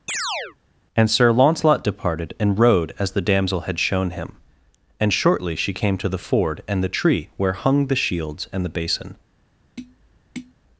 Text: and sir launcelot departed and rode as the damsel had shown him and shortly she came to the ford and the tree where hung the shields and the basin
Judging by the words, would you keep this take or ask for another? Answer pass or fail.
pass